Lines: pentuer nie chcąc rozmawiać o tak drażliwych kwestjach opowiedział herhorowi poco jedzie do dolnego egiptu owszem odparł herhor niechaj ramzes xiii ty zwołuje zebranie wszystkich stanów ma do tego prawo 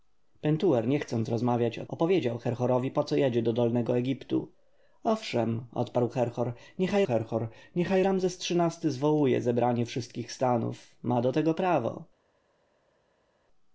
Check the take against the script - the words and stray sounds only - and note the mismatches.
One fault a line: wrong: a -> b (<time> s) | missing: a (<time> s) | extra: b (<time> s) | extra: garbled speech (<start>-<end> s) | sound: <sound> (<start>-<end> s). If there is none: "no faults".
missing: tak drażliwych kwestjach (1.9 s)
extra: herhor niechaj (7.0 s)